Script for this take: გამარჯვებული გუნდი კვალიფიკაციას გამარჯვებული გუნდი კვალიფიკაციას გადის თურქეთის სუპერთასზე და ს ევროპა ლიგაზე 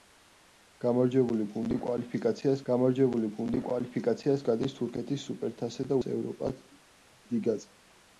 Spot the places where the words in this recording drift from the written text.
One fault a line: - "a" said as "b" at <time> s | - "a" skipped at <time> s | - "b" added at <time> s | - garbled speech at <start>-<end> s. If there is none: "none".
none